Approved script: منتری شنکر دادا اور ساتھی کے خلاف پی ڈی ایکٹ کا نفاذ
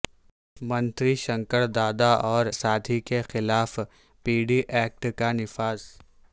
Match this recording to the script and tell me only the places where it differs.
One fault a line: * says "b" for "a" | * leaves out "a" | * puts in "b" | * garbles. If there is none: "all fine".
all fine